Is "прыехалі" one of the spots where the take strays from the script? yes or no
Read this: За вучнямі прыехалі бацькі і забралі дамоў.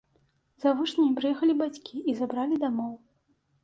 no